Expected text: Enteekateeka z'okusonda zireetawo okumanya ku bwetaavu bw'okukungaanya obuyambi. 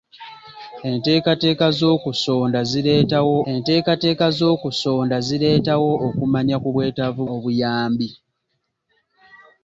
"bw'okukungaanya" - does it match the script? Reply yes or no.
no